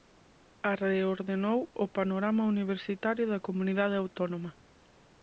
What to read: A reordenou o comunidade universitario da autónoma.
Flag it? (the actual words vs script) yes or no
yes